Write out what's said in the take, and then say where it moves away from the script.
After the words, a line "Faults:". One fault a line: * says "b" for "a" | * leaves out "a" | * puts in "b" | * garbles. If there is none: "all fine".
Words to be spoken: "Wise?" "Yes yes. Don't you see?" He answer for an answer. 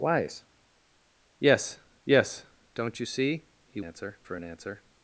"Wise?" "Yes yes. Don't you see?" He answer for an answer.
Faults:
all fine